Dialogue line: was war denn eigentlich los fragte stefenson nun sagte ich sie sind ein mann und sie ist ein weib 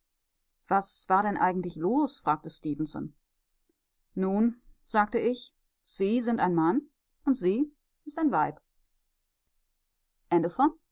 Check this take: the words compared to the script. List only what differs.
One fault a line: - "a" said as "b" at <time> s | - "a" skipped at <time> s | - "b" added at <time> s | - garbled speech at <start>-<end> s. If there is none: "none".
none